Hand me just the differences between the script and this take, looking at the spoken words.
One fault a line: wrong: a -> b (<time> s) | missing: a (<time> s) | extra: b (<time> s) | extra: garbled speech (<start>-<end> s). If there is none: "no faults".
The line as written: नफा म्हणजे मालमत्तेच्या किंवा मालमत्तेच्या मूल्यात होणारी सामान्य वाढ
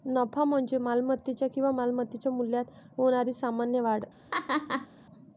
no faults